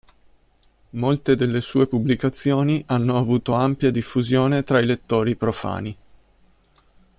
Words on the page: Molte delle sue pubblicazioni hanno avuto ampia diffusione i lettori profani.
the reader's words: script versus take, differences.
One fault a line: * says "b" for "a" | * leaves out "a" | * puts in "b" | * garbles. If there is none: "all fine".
* puts in "tra"